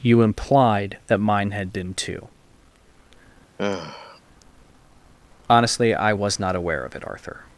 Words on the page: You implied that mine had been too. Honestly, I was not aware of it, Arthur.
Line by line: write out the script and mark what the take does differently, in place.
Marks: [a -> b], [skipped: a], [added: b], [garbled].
You implied that mine had been too. Honestly, I was not aware of it, Arthur.